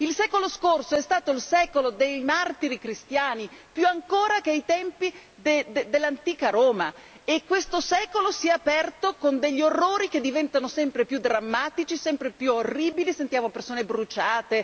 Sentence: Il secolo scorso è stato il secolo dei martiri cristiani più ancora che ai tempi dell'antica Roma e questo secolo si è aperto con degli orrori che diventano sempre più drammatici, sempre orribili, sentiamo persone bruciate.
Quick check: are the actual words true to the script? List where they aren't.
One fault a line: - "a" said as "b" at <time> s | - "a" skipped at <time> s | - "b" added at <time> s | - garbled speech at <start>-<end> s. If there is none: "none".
- "più" added at 12.3 s